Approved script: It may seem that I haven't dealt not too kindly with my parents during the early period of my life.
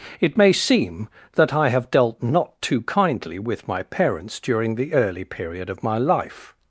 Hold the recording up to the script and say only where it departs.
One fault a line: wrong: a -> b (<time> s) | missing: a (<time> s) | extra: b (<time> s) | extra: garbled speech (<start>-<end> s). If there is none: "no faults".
wrong: haven't -> have (1.7 s)